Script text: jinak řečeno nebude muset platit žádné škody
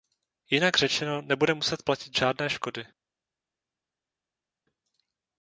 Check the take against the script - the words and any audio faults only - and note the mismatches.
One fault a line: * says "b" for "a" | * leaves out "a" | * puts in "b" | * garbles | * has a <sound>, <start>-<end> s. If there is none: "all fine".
all fine